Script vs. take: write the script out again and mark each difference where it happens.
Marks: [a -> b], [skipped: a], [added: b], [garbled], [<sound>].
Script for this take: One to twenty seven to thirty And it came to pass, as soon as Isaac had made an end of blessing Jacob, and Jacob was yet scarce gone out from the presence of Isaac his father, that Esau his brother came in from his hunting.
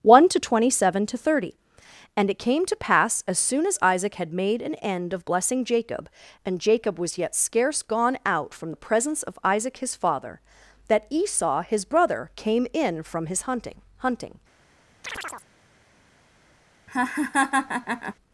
One to twenty seven to thirty And it came to pass, as soon as Isaac had made an end of blessing Jacob, and Jacob was yet scarce gone out from the presence of Isaac his father, that Esau his brother came in from his hunting. [added: hunting] [chirp] [laugh]